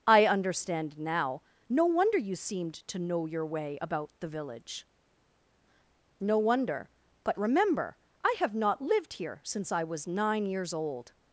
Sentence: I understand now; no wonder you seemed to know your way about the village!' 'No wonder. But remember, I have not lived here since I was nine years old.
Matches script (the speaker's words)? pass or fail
pass